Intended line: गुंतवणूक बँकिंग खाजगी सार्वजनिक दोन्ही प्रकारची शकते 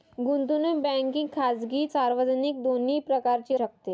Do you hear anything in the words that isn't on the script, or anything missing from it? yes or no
no